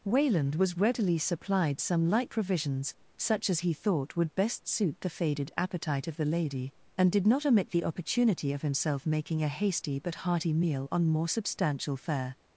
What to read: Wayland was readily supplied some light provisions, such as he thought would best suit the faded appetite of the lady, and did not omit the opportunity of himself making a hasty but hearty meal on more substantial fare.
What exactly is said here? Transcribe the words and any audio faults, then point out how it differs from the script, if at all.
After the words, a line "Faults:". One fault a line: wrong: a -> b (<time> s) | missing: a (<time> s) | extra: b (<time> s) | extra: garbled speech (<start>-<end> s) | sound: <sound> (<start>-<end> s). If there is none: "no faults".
Wayland was readily supplied some light provisions, such as he thought would best suit the faded appetite of the lady, and did not omit the opportunity of himself making a hasty but hearty meal on more substantial fare.
Faults:
no faults